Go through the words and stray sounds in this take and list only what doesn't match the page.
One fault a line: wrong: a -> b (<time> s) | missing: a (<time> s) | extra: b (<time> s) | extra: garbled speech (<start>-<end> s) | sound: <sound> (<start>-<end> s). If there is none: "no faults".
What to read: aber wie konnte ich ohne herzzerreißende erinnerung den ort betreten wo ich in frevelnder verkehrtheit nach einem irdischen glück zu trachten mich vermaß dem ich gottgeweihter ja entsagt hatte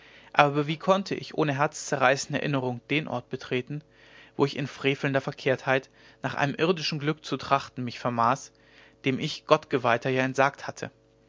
no faults